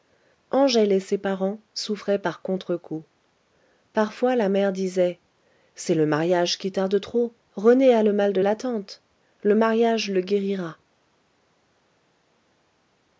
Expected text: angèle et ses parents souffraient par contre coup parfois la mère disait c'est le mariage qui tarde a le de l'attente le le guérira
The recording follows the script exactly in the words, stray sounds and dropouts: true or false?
false